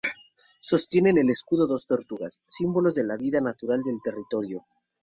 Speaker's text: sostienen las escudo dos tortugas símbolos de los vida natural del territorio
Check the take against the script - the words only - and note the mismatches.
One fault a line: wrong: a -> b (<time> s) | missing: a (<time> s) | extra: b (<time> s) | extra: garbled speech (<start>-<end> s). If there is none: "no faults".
wrong: las -> el (1.2 s)
wrong: los -> la (3.0 s)